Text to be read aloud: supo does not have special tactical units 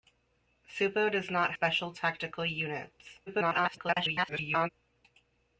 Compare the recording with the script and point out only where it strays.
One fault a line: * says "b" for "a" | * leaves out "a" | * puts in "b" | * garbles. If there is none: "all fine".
* leaves out "have"
* garbles